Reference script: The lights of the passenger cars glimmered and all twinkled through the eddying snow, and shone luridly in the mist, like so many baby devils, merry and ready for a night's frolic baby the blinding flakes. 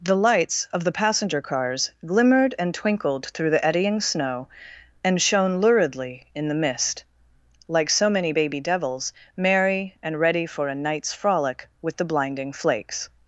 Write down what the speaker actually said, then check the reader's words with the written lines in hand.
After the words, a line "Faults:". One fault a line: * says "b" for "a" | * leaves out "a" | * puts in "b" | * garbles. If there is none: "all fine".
The lights of the passenger cars glimmered and twinkled through the eddying snow, and shone luridly in the mist, like so many baby devils, merry and ready for a night's frolic with the blinding flakes.
Faults:
* leaves out "all"
* says "with" for "baby"